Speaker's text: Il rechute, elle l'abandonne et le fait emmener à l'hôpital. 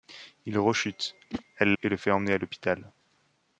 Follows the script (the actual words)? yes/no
no